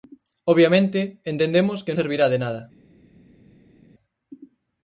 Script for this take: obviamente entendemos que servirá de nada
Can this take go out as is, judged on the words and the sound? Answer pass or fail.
pass